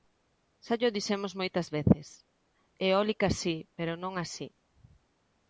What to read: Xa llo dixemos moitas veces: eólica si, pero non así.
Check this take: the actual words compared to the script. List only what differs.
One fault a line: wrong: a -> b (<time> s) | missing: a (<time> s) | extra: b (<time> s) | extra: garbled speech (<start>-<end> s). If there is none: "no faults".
no faults